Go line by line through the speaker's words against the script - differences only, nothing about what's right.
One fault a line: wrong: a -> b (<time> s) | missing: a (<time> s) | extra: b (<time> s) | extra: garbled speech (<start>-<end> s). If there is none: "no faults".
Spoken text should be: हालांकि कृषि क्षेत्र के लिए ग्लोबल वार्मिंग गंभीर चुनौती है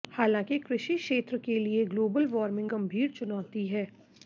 no faults